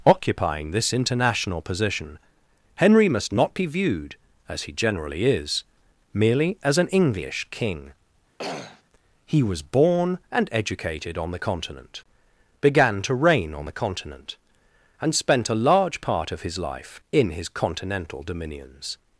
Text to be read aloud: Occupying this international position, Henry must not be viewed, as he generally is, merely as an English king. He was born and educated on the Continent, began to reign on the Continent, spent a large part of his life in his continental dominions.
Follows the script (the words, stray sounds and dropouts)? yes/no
no